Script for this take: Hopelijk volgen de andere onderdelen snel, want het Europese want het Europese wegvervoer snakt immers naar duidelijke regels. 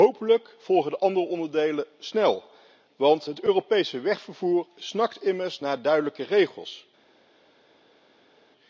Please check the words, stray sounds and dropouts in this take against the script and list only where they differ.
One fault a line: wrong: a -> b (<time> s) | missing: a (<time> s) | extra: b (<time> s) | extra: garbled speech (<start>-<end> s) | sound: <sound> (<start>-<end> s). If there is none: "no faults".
missing: want het Europese (4.0 s)